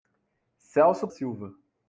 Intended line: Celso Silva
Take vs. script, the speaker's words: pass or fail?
pass